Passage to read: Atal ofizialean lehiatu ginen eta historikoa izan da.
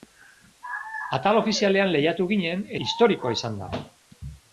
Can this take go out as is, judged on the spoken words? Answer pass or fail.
fail